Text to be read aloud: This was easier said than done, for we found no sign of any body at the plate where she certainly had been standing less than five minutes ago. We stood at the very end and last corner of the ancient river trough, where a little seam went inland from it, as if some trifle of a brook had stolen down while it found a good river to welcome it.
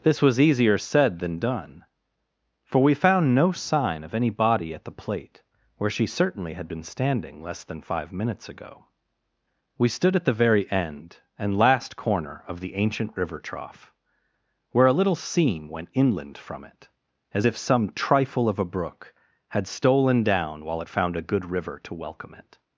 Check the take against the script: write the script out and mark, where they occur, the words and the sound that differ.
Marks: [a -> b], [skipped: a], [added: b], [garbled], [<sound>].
This was easier said than done, for we found no sign of any body at the plate where she certainly had been standing less than five minutes ago. We stood at the very end and last corner of the ancient river trough, where a little seam went inland from it, as if some trifle of a brook had stolen down while it found a good river to welcome it.